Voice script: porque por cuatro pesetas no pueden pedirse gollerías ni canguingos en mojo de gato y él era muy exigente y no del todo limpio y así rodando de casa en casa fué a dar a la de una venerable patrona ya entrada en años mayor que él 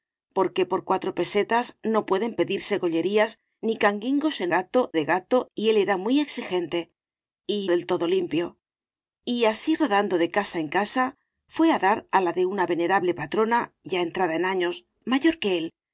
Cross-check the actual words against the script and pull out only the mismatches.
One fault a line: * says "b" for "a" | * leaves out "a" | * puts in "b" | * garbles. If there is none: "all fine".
* says "gato" for "mojo"
* leaves out "no"